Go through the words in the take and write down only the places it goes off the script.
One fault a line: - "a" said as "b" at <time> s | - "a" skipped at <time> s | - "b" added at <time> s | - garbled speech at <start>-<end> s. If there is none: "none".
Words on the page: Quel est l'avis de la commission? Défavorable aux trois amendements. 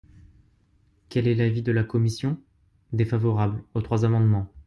none